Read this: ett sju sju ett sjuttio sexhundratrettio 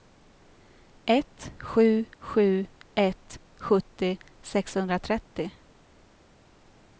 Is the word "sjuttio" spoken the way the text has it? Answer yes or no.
yes